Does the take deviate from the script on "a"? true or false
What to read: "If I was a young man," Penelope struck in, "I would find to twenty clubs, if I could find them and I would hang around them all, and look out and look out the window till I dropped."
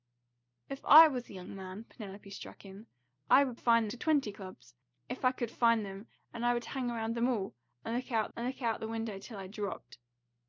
false